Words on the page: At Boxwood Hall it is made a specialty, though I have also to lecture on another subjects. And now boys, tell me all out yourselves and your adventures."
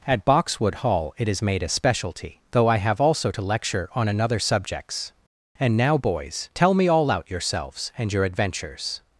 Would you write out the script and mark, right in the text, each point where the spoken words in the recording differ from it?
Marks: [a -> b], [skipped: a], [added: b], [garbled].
At Boxwood Hall it is made a specialty, though I have also to lecture on another subjects. And now boys, tell me all out yourselves and your adventures."